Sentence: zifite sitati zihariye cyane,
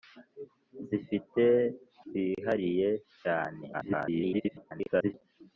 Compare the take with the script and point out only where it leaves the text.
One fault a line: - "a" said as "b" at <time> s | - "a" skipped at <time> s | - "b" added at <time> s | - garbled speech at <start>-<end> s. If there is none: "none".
- "sitati" skipped at 1.4 s
- garbled speech at 3.7-5.1 s